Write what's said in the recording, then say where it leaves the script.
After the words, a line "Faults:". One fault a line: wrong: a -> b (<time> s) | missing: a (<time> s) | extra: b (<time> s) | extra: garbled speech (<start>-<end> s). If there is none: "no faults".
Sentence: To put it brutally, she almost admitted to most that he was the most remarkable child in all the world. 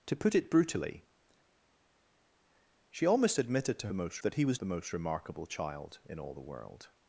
To put it brutally, she almost admitted to most that he was the most remarkable child in all the world.
Faults:
no faults